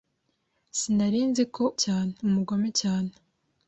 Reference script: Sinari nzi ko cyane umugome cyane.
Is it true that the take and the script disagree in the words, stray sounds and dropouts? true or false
false